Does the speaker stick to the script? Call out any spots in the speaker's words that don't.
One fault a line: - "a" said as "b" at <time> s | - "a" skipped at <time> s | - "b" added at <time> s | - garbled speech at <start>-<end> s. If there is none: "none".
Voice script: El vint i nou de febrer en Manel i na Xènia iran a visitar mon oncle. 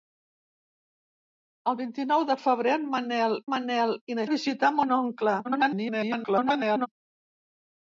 - "Manel" added at 3.5 s
- "Xènia iran" skipped at 4.3 s
- garbled speech at 5.4-6.9 s